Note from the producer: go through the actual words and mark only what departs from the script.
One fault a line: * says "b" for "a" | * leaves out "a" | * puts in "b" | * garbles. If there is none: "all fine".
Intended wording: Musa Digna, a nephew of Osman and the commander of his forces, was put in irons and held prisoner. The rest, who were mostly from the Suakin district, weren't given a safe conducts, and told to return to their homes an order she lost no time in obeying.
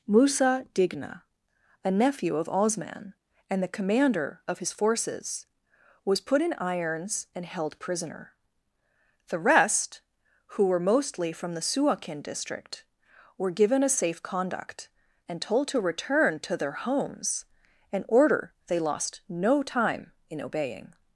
* says "were" for "weren't"
* says "conduct" for "conducts"
* says "they" for "she"